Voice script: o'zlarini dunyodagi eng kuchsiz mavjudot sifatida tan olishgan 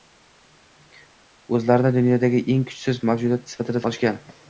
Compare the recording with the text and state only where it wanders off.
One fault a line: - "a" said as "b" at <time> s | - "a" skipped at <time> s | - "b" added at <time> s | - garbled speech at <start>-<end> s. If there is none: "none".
- "tan" skipped at 3.8 s